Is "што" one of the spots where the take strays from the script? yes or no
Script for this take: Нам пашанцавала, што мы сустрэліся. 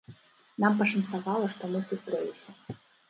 no